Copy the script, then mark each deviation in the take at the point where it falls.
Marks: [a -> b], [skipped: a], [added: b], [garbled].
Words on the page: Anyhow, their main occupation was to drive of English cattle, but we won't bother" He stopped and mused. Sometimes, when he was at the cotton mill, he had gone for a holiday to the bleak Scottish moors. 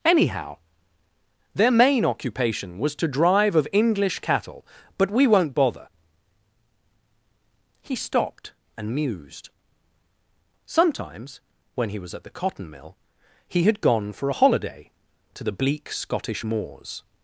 Anyhow, their main occupation was to drive of English cattle, but we won't bother" He stopped and mused. Sometimes, when he was at the cotton mill, he had gone for a holiday to the bleak Scottish moors.